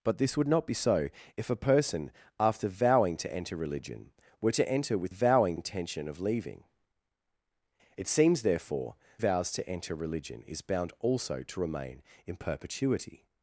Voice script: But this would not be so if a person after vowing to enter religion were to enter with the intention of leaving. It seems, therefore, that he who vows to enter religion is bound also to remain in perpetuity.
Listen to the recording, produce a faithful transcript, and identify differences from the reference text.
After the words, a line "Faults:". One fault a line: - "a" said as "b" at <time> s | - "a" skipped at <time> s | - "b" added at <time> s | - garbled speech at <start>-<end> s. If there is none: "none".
But this would not be so if a person after vowing to enter religion were to enter with vowing intention of leaving. It seems, therefore, vows to enter religion is bound also to remain in perpetuity.
Faults:
- "the" said as "vowing" at 5.1 s
- "that he who" skipped at 8.9 s